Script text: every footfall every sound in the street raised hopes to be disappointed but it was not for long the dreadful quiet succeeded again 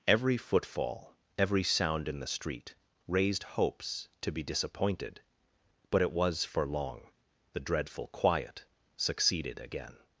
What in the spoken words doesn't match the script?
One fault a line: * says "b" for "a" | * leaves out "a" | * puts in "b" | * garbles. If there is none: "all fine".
* leaves out "not"